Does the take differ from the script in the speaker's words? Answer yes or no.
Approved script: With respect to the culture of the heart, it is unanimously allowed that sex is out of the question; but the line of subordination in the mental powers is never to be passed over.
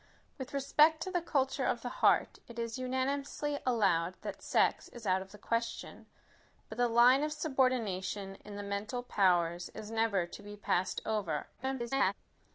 yes